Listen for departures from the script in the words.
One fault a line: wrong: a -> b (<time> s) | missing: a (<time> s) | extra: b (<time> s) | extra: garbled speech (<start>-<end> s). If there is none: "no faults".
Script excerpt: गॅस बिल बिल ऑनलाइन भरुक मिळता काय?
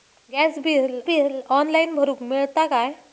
no faults